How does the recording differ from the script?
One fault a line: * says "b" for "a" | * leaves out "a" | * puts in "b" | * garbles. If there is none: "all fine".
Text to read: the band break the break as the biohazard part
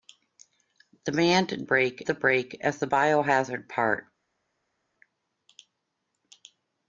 all fine